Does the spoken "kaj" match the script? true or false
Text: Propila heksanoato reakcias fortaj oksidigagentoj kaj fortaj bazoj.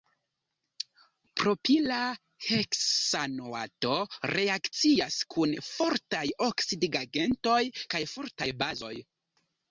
true